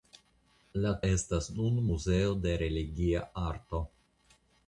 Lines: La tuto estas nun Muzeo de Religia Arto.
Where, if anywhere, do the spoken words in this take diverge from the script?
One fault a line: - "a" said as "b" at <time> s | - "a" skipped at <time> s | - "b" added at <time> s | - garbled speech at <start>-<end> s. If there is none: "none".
- "tuto" skipped at 0.9 s